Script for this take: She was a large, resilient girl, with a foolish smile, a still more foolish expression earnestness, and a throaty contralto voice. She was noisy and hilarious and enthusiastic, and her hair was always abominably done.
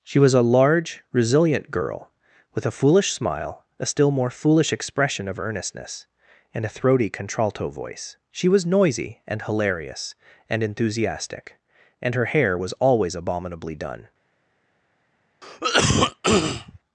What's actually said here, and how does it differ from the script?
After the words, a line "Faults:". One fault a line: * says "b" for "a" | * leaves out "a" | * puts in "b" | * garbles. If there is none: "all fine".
She was a large, resilient girl, with a foolish smile, a still more foolish expression of earnestness, and a throaty contralto voice. She was noisy and hilarious and enthusiastic, and her hair was always abominably done.
Faults:
* puts in "of"